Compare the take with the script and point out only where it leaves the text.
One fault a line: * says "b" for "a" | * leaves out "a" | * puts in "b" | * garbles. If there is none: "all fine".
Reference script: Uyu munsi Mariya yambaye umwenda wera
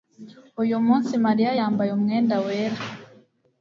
all fine